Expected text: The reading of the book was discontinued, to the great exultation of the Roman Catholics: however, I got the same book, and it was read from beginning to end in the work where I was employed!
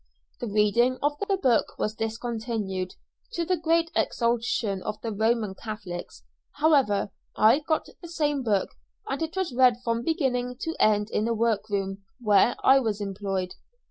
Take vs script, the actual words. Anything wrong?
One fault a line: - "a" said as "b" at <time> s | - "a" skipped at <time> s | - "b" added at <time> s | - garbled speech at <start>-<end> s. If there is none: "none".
- "room" added at 11.7 s